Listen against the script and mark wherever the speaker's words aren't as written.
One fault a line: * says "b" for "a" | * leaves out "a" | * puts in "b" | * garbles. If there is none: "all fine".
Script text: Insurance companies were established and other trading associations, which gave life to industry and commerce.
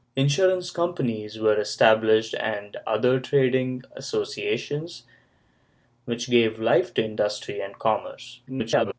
* garbles